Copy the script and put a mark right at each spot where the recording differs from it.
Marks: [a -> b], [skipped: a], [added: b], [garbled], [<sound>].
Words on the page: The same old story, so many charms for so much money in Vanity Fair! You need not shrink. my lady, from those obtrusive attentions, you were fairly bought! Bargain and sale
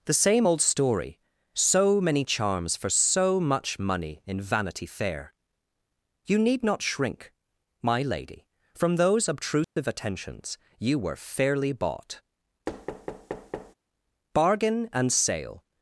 The same old story, so many charms for so much money in Vanity Fair! You need not shrink. my lady, from those obtrusive [dropout] attentions, you were fairly bought! [thud] Bargain and sale